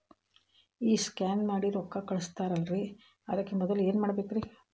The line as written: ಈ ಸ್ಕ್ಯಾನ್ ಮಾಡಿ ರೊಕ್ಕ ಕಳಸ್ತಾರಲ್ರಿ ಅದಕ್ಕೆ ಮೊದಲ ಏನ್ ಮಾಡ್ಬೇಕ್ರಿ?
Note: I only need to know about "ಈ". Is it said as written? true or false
true